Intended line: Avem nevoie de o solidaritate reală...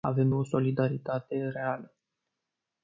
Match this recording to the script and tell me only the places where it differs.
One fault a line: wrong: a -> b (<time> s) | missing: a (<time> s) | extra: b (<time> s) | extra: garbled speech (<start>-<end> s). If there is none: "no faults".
missing: nevoie de (0.3 s)